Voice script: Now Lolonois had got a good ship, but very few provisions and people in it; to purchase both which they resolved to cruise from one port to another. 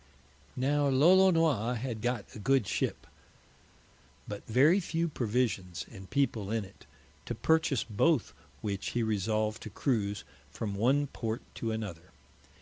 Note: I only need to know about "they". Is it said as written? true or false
false